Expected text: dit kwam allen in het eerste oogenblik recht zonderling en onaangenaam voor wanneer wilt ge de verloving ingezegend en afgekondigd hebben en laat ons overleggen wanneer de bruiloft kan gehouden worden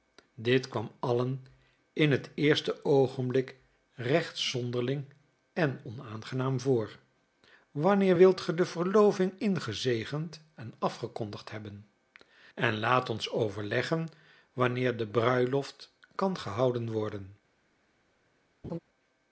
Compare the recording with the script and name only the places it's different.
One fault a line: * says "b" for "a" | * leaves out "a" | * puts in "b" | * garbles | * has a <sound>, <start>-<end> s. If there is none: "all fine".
* has a laugh, 18.6-18.8 s